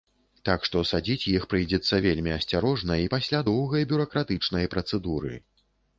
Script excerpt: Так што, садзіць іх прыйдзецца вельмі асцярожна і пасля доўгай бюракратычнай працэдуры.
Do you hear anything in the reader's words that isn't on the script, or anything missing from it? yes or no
no